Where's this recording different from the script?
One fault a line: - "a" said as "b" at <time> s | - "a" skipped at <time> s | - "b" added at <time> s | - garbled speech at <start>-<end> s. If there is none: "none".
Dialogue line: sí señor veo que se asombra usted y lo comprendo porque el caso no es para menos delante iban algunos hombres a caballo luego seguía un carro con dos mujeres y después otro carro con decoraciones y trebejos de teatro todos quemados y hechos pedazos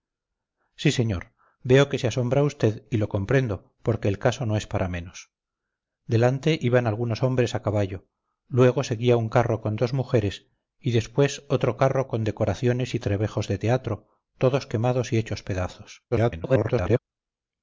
- garbled speech at 16.1-17.0 s